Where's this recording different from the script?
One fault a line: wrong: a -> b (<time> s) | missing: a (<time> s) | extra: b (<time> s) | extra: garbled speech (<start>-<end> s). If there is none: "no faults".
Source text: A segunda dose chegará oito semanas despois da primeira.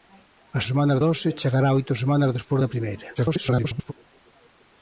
wrong: segunda -> semanas (0.7 s)
extra: garbled speech (3.2-3.9 s)